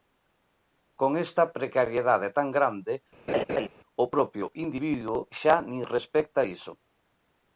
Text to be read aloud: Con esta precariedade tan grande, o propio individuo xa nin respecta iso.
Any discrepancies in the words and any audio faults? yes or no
yes